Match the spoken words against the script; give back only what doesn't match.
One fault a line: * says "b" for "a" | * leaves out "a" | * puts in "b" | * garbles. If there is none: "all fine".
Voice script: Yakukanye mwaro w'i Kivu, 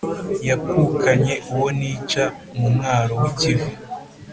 * puts in "uwo nica mu"